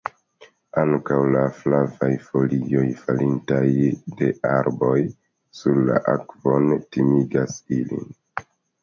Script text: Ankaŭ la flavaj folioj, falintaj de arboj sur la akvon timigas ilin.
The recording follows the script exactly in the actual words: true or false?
true